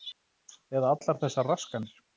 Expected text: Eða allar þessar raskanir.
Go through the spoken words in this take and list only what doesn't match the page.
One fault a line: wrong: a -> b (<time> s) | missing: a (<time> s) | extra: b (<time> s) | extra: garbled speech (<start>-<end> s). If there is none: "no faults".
no faults